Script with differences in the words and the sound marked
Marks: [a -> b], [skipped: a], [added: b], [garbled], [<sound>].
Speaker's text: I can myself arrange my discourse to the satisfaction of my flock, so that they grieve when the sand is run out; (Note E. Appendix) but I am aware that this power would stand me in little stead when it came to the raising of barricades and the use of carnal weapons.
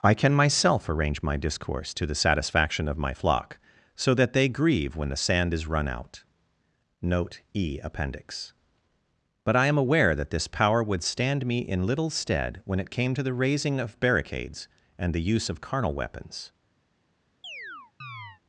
I can myself arrange my discourse to the satisfaction of my flock, so that they grieve when the sand is run out; (Note E. Appendix) but I am aware that this power would stand me in little stead when it came to the raising of barricades and the use of carnal weapons. [chirp]